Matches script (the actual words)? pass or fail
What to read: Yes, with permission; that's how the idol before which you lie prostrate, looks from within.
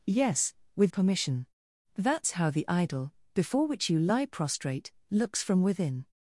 pass